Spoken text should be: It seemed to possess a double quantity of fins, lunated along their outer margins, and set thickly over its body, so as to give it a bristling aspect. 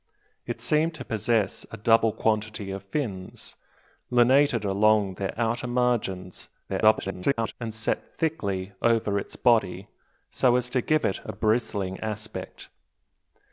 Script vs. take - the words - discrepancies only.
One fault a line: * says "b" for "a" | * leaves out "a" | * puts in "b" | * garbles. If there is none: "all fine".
* garbles